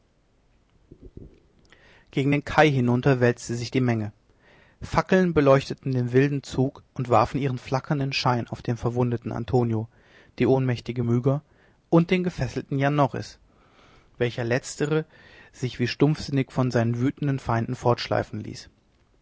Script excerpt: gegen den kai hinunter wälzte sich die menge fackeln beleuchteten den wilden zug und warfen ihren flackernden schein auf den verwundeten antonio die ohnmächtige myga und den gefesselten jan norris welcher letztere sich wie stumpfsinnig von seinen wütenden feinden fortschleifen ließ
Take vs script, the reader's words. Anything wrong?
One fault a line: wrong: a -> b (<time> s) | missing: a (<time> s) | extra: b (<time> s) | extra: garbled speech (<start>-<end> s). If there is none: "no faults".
no faults